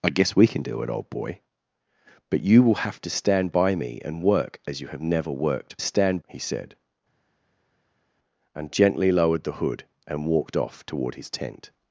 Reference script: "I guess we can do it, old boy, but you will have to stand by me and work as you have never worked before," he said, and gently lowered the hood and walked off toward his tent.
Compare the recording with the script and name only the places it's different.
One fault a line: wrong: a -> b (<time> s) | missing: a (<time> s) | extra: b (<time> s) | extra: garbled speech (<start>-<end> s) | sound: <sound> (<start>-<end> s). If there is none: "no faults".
wrong: before -> stand (5.8 s)